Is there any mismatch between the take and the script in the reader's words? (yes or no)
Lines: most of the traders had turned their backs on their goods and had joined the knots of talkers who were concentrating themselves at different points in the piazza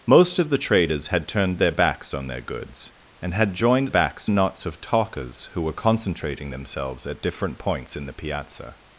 yes